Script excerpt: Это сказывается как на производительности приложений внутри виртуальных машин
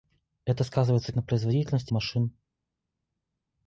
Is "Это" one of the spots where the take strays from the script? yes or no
no